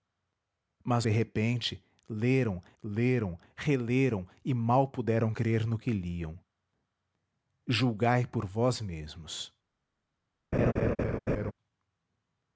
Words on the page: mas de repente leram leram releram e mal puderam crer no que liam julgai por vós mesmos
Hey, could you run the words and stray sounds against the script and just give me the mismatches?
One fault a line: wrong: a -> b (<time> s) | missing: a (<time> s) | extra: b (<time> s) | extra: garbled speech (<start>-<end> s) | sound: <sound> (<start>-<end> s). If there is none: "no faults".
sound: laugh (10.5-11.5 s)